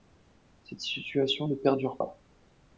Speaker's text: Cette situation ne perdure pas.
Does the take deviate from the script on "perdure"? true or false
false